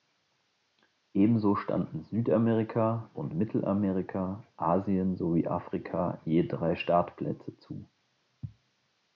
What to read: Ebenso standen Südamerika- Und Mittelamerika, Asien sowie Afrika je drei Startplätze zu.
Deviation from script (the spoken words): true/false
false